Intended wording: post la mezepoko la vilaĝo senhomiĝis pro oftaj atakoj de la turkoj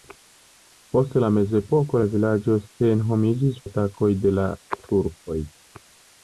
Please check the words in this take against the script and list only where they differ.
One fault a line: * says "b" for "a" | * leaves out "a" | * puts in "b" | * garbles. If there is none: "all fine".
* leaves out "pro oftaj"